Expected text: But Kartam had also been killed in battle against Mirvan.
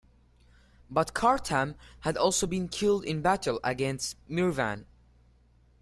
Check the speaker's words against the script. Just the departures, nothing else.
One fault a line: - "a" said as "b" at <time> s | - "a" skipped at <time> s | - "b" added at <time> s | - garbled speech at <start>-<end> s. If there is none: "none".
none